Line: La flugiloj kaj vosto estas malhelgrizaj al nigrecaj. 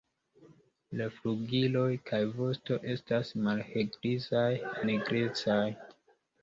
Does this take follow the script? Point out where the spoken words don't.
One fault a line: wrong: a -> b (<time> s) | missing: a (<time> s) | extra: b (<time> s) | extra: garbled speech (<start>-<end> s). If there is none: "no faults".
missing: al (4.4 s)